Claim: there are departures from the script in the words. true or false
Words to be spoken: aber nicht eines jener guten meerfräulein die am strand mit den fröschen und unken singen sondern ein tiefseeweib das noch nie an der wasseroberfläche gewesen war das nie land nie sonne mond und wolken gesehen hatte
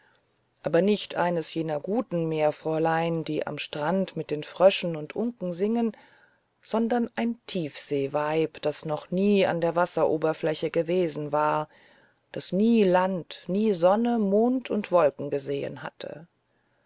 false